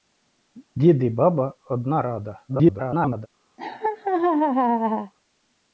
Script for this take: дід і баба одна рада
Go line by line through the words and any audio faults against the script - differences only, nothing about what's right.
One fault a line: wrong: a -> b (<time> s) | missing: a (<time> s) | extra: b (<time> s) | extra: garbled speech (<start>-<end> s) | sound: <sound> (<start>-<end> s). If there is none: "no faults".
extra: garbled speech (2.5-3.3 s)
sound: laugh (3.6-5.1 s)